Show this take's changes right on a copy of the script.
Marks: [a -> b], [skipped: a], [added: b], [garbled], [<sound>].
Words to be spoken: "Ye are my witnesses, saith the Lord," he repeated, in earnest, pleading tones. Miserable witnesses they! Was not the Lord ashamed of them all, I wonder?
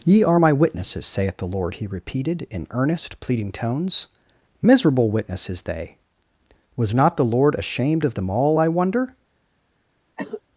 "Ye are my witnesses, saith the Lord," he repeated, in earnest, pleading tones. Miserable witnesses they! Was not the Lord ashamed of them all, I wonder? [cough]